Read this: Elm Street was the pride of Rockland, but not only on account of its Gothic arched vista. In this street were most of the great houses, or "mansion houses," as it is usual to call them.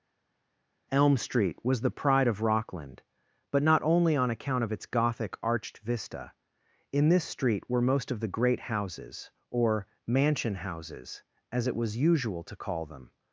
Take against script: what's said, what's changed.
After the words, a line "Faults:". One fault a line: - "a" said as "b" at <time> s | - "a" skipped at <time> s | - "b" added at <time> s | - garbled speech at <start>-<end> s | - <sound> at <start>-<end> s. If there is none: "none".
Elm Street was the pride of Rockland, but not only on account of its Gothic arched vista. In this street were most of the great houses, or "mansion houses," as it was usual to call them.
Faults:
- "is" said as "was" at 11.7 s